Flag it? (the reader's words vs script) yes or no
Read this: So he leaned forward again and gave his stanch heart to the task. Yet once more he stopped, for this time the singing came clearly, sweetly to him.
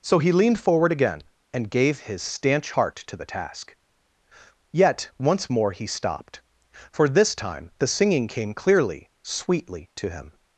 no